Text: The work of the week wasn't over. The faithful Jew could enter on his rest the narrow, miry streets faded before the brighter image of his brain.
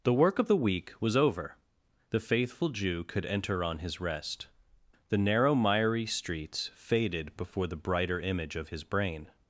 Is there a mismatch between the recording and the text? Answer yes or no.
yes